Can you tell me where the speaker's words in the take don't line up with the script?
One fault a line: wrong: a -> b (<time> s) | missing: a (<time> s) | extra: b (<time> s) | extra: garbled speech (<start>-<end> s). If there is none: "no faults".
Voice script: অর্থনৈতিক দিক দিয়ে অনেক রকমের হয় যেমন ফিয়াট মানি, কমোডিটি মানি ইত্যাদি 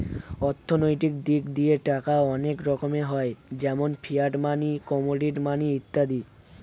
extra: টাকা (1.9 s)